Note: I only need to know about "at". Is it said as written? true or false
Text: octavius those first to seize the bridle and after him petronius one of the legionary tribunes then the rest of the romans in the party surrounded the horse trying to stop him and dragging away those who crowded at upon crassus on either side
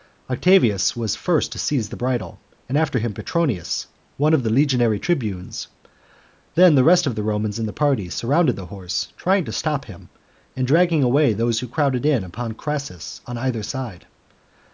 false